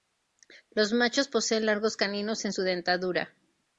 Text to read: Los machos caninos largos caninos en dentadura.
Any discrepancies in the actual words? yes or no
yes